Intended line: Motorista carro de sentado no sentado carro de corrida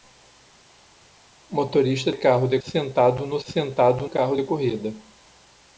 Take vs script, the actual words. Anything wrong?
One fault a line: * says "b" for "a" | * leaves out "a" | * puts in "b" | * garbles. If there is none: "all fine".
all fine